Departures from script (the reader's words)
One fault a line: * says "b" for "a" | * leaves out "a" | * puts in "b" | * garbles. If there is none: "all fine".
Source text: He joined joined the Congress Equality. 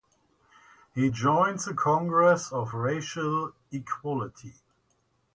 * leaves out "joined"
* puts in "of Racial"